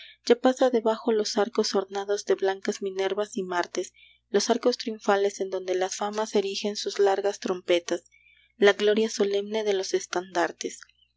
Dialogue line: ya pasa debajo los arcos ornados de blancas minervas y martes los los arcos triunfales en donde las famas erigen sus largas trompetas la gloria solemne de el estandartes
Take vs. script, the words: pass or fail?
fail